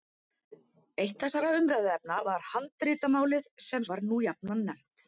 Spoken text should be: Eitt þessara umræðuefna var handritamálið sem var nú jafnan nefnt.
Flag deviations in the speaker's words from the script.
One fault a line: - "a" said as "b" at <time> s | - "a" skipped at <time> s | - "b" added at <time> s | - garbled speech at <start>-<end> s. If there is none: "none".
none